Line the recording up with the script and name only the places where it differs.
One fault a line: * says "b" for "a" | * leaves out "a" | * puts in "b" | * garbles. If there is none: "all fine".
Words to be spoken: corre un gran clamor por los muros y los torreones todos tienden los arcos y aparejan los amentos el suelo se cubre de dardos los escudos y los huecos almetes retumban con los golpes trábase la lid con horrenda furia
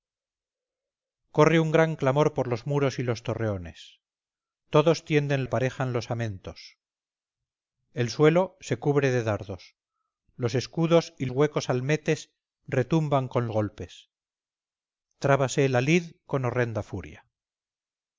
* leaves out "los arcos y"
* leaves out "los"
* leaves out "los"